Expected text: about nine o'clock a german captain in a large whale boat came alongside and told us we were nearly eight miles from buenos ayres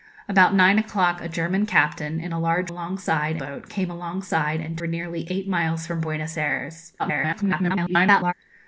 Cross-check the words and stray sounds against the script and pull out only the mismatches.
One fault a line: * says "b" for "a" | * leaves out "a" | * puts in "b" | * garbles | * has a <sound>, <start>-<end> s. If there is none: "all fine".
* says "alongside" for "whale"
* leaves out "told us we"
* garbles